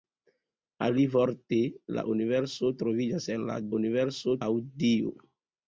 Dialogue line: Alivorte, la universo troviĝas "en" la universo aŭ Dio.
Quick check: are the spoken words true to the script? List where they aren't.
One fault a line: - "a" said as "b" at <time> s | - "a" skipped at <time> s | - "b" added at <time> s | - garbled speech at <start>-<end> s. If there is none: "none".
none